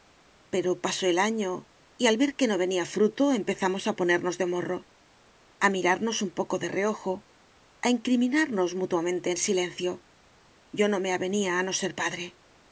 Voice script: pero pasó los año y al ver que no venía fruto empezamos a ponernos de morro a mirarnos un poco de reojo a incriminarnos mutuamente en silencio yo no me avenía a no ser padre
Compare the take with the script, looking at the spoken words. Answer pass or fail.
fail